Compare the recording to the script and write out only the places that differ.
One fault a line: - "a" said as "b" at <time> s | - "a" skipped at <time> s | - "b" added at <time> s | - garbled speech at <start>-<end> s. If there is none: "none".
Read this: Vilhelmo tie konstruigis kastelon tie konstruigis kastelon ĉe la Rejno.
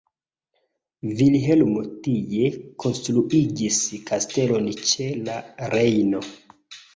- "tie konstruigis kastelon" skipped at 4.7 s